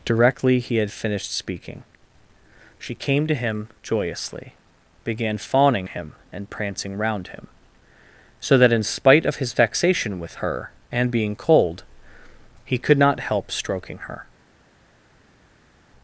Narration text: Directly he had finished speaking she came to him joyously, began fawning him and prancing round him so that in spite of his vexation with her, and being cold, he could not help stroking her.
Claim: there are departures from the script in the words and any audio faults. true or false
false